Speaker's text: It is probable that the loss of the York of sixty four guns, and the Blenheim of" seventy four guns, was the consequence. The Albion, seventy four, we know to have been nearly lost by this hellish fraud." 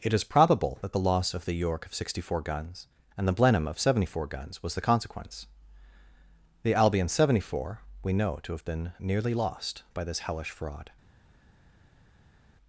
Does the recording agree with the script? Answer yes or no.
yes